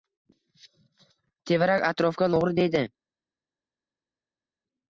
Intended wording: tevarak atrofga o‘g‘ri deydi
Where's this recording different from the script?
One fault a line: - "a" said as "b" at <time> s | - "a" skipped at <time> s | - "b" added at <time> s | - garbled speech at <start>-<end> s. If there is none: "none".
none